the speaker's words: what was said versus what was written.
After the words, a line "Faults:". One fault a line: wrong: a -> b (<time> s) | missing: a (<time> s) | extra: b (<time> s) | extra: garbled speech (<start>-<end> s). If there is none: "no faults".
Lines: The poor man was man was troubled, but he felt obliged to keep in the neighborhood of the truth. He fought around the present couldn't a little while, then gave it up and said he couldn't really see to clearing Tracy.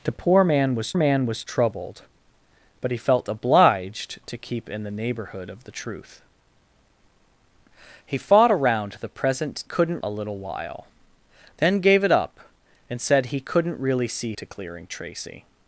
The poor man was man was troubled, but he felt obliged to keep in the neighborhood of the truth. He fought around the present couldn't a little while, then gave it up and said he couldn't really see to clearing Tracy.
Faults:
no faults